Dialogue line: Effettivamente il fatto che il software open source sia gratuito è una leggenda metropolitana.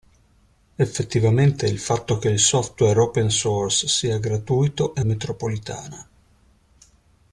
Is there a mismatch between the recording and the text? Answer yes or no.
yes